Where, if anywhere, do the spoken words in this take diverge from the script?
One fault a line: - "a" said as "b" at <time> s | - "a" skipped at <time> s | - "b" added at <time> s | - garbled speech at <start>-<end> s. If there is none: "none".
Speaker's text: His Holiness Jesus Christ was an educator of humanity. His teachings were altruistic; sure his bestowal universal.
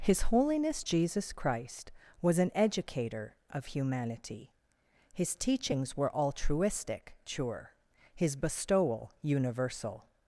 none